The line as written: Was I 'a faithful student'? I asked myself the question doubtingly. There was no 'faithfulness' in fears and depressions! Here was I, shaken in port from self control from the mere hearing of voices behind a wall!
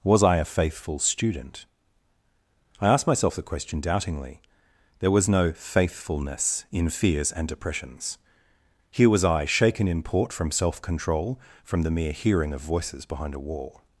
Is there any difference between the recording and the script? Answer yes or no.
no